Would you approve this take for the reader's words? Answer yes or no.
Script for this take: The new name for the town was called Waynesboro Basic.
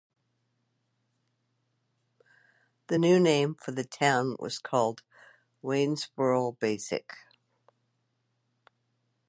yes